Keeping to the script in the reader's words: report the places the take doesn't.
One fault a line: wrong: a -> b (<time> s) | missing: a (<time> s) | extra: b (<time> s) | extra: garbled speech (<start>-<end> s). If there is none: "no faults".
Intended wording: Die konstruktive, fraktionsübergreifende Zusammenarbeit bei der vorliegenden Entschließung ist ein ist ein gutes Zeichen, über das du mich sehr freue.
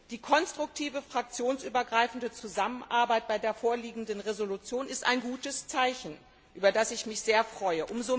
missing: ist ein (5.2 s)
wrong: du -> ich (6.9 s)